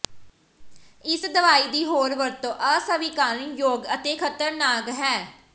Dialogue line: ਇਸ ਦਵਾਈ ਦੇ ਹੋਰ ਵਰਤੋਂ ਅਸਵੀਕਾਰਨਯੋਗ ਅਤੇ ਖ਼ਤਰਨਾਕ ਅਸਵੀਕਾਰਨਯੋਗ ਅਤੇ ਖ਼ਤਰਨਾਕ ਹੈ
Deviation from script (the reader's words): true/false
true